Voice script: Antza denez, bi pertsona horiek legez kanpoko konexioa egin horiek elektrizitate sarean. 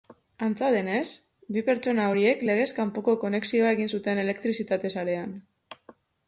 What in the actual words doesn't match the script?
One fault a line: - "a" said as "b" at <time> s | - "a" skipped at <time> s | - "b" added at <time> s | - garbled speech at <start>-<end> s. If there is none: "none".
- "horiek" said as "zuten" at 4.0 s